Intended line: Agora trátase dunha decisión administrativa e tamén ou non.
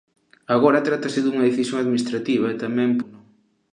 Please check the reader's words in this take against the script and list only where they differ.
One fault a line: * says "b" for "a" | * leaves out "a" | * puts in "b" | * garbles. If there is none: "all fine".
all fine